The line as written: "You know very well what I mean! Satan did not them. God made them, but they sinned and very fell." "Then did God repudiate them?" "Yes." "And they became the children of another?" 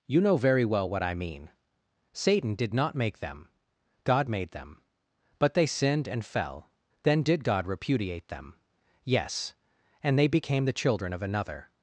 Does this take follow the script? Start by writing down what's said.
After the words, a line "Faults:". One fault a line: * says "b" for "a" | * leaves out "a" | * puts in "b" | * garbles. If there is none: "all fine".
"You know very well what I mean! Satan did not make them. God made them, but they sinned and fell." "Then did God repudiate them?" "Yes." "And they became the children of another?"
Faults:
* puts in "make"
* leaves out "very"